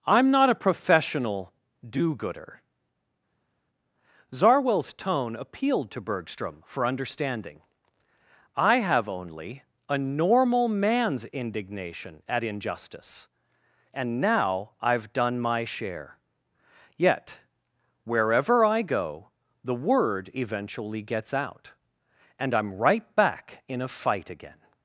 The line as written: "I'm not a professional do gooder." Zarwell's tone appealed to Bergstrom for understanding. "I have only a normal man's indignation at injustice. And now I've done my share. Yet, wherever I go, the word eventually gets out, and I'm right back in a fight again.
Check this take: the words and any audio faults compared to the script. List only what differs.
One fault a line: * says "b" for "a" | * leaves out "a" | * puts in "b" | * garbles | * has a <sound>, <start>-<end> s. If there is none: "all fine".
all fine